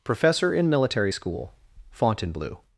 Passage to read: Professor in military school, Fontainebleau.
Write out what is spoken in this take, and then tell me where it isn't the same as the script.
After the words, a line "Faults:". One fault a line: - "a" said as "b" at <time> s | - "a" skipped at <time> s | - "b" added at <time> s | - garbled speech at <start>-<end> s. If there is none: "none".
Professor in military school, Fontainebleau.
Faults:
none